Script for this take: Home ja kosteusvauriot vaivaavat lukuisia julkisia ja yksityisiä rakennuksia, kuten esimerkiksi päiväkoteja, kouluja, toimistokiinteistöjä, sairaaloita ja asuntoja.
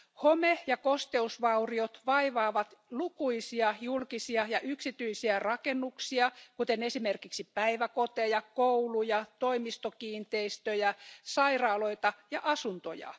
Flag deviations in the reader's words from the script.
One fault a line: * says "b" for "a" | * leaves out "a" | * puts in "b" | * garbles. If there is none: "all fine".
all fine